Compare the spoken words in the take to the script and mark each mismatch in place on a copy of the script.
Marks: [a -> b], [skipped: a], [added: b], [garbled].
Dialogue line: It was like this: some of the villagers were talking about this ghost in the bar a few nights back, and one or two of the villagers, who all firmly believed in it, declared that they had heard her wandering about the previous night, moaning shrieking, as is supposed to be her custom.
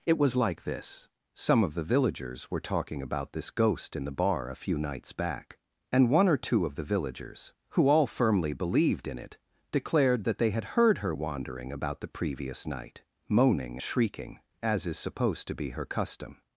It was like this: some of the villagers were talking about this ghost in the bar a few nights back, and one or two of the villagers, who all firmly believed in it, declared that they had heard her wandering about the previous night, moaning shrieking, as is supposed to be her custom.